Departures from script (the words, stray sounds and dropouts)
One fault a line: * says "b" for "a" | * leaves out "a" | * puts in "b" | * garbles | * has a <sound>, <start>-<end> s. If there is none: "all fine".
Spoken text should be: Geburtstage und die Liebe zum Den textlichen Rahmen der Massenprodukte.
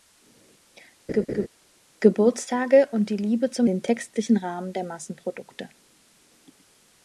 * has a laugh, 1.1-1.5 s